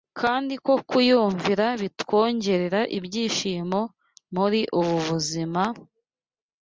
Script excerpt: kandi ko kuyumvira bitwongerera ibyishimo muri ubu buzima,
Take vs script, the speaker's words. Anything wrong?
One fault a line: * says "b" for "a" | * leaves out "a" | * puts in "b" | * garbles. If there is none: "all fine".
all fine